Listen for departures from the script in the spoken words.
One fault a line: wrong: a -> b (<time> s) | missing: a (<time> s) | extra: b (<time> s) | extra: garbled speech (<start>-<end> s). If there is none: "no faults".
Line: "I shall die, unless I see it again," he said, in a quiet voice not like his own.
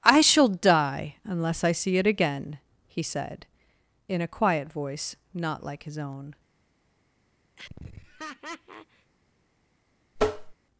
no faults